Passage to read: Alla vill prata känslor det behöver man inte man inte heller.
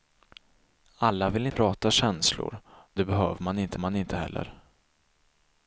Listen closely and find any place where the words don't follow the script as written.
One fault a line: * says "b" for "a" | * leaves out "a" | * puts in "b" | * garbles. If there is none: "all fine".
all fine